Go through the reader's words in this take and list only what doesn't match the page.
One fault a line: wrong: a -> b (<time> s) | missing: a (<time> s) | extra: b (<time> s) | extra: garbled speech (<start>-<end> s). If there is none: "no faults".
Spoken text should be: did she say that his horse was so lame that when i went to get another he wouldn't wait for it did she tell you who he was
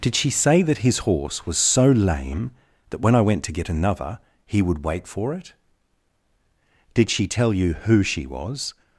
wrong: wouldn't -> would (4.6 s)
wrong: he -> she (8.0 s)